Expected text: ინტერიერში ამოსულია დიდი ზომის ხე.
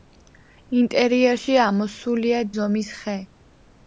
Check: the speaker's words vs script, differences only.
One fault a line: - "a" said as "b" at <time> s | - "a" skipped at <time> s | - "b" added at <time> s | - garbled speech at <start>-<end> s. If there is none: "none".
- "დიდი" skipped at 2.4 s